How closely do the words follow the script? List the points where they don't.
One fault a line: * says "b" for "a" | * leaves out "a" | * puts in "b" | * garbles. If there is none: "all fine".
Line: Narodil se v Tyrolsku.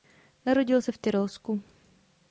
all fine